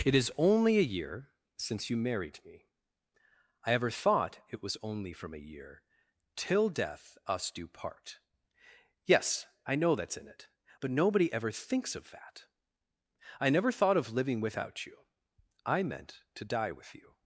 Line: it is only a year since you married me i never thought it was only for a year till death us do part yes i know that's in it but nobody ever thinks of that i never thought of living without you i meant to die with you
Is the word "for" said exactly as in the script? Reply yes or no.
no